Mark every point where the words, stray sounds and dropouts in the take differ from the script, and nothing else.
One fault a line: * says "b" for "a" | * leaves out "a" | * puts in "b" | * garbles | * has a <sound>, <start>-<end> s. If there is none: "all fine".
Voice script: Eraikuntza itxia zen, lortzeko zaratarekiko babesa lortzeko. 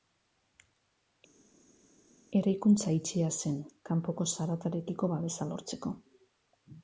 * says "kanpoko" for "lortzeko"